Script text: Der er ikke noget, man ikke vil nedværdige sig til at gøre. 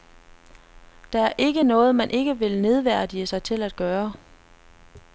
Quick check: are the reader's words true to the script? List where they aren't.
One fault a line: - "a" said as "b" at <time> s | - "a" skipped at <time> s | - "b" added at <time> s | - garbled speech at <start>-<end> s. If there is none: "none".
none